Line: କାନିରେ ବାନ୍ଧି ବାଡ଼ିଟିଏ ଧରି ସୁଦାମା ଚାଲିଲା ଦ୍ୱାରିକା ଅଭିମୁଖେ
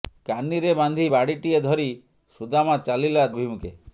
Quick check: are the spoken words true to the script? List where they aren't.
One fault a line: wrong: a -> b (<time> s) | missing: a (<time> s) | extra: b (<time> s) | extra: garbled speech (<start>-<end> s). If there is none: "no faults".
missing: ଦ୍ୱାରିକା (3.3 s)